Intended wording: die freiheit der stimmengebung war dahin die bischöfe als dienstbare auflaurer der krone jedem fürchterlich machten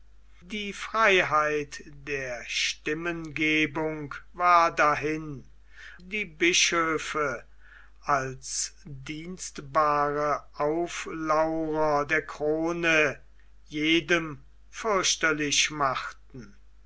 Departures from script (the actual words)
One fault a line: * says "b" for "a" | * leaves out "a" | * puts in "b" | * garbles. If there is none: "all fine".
all fine